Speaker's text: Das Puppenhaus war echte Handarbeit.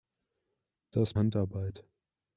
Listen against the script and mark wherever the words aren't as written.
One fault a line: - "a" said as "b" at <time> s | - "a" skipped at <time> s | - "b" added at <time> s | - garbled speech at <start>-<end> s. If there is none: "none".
- "Puppenhaus war echte" skipped at 1.1 s